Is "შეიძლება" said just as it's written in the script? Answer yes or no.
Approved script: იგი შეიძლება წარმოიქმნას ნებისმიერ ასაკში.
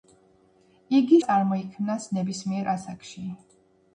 no